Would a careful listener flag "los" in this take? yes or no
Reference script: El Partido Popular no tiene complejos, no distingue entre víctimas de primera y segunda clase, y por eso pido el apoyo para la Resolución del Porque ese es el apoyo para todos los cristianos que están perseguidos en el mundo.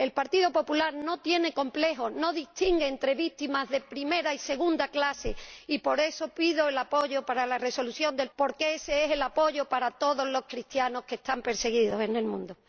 no